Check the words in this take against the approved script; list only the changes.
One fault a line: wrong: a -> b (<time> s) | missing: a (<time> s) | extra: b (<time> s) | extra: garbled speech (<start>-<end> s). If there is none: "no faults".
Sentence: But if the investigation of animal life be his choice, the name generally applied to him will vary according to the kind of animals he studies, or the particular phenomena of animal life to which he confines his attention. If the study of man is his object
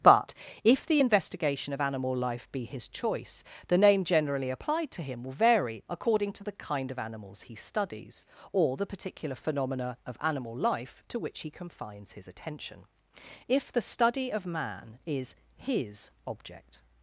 no faults